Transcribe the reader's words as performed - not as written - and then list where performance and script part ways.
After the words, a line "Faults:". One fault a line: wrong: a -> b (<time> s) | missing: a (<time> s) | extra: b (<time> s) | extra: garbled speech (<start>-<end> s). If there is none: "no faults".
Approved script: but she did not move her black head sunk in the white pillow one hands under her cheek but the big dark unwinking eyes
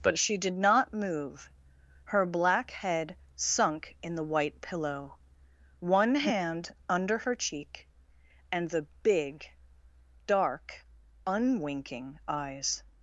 but she did not move her black head sunk in the white pillow one hand under her cheek and the big dark unwinking eyes
Faults:
wrong: hands -> hand (6.2 s)
wrong: but -> and (8.5 s)